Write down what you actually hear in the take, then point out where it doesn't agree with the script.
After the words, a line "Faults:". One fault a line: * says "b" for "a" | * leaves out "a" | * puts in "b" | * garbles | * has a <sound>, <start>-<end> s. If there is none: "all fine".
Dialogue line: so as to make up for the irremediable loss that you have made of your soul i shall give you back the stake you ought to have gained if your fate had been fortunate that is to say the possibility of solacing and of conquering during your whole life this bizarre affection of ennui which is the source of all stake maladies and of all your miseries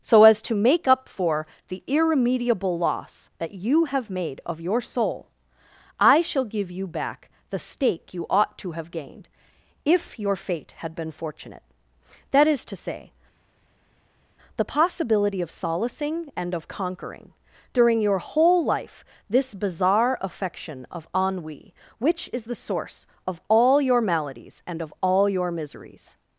so as to make up for the irremediable loss that you have made of your soul i shall give you back the stake you ought to have gained if your fate had been fortunate that is to say the possibility of solacing and of conquering during your whole life this bizarre affection of ennui which is the source of all your maladies and of all your miseries
Faults:
* says "your" for "stake"